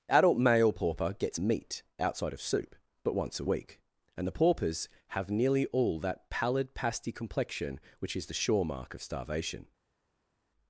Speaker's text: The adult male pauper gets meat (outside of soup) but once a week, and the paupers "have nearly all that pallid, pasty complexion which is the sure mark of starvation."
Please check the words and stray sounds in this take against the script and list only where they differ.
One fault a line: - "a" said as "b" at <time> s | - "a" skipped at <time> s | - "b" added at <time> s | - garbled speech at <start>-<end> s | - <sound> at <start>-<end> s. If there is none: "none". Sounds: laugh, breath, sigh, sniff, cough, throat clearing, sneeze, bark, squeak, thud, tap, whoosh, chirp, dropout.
- "The" skipped at 0.1 s